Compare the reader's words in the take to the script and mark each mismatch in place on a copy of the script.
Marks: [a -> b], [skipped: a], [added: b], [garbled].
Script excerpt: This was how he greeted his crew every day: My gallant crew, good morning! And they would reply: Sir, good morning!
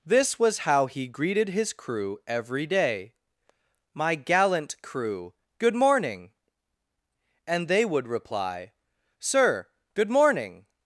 This was how he greeted his crew every day: My gallant crew, good morning! And they would reply: Sir, good morning!